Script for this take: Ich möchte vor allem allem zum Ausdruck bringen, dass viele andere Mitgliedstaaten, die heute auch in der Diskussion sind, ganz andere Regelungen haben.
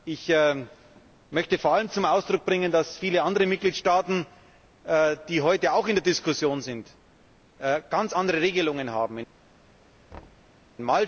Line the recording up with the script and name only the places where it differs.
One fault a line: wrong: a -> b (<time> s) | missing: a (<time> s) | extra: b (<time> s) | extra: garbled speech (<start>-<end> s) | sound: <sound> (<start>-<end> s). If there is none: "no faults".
missing: allem (1.9 s)
sound: thud (10.1-10.6 s)